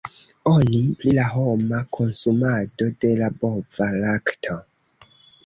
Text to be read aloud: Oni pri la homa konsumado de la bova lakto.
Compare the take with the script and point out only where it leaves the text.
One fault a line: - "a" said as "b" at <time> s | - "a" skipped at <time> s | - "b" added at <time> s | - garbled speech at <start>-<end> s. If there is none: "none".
none